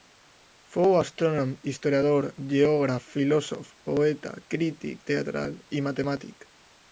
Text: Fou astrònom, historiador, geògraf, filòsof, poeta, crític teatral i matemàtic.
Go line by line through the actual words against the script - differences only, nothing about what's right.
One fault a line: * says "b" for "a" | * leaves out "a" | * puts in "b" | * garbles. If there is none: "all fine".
all fine